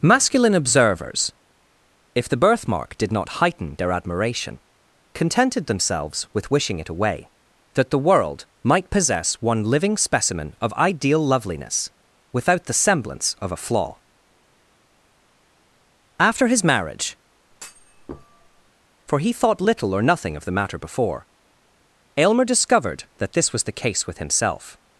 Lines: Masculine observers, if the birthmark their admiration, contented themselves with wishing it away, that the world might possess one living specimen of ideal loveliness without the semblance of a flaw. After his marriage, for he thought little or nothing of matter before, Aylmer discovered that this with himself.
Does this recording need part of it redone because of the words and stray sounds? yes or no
yes